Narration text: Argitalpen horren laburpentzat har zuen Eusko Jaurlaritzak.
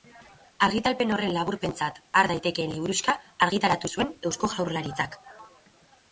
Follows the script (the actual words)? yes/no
no